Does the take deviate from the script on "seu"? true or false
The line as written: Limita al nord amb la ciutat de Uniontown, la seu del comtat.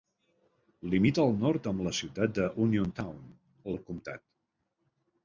true